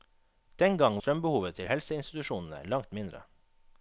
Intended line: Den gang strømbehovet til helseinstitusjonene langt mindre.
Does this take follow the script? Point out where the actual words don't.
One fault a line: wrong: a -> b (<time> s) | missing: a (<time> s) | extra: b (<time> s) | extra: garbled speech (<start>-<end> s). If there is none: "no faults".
no faults